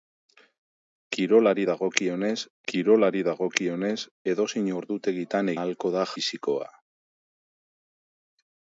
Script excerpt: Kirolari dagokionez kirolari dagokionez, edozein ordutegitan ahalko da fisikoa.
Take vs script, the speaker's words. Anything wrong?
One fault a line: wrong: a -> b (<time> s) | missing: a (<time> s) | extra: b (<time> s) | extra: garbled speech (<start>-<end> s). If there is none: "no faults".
no faults